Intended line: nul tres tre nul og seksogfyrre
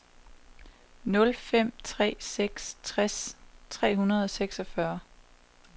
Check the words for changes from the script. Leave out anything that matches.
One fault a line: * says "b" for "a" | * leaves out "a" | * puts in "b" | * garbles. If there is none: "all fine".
* puts in "fem tre seks"
* says "hundrede" for "nul"